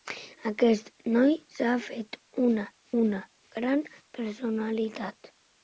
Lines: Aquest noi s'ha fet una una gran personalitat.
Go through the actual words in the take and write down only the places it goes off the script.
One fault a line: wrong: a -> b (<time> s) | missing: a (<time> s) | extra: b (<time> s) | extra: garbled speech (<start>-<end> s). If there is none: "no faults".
no faults